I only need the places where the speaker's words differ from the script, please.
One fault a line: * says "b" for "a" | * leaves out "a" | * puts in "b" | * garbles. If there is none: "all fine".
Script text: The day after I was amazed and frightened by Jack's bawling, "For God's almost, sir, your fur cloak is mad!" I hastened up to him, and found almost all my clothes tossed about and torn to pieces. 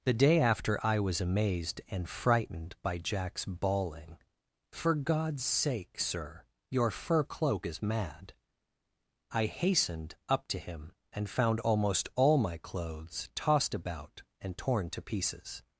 * says "sake" for "almost"